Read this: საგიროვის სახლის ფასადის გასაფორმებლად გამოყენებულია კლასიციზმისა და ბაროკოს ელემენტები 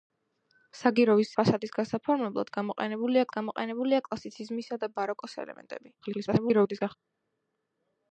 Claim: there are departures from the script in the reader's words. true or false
true